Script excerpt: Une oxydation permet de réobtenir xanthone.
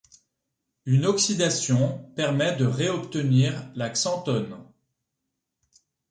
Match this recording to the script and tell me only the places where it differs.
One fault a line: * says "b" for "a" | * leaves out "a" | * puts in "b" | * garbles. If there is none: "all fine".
* puts in "la"